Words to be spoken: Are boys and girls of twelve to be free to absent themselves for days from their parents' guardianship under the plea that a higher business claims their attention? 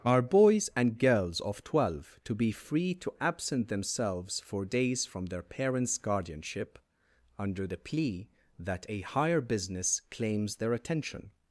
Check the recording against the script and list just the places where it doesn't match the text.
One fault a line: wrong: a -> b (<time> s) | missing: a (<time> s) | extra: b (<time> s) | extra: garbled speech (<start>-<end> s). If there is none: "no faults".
no faults